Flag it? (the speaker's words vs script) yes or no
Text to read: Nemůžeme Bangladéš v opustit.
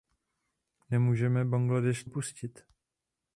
no